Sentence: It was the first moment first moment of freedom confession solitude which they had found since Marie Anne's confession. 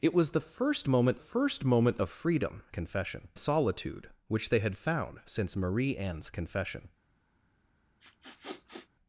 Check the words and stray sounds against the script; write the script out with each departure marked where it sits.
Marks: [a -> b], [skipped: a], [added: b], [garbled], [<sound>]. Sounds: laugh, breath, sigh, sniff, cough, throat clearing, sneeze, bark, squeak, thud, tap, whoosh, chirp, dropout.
It was the first moment first moment of freedom confession solitude which they had found since Marie Anne's confession. [sniff]